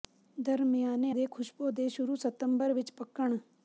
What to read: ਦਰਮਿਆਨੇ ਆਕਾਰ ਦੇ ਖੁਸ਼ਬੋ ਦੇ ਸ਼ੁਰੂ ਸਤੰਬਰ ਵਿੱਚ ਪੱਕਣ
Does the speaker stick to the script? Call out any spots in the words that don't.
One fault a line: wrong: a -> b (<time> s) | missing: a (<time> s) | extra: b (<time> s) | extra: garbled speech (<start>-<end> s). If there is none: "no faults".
missing: ਆਕਾਰ (1.1 s)